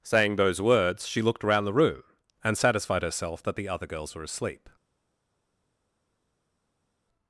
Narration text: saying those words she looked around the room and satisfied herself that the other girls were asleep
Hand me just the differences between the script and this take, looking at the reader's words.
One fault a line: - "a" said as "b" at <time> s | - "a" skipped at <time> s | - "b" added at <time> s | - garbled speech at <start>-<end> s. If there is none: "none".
none